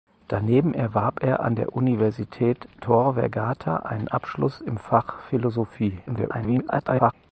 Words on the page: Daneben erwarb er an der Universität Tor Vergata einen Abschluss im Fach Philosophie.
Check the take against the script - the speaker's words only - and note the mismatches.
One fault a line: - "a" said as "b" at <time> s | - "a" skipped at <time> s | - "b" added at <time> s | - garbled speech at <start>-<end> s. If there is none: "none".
- garbled speech at 6.1-7.1 s